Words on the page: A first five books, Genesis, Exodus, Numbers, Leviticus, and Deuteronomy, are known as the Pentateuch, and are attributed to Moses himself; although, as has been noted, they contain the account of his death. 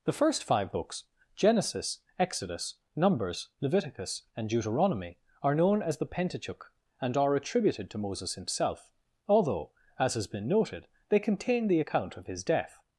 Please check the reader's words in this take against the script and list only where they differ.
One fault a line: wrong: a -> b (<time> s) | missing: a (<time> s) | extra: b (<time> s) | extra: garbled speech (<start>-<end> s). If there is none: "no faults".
wrong: A -> The (0.0 s)